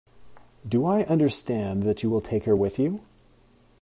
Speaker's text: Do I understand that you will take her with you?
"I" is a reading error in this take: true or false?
false